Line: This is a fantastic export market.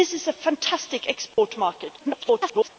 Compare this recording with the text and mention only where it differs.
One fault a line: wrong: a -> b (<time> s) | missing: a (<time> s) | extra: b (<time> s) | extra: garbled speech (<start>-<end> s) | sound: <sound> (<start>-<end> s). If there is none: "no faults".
sound: dropout (1.3-1.4 s)
extra: garbled speech (2.0-2.7 s)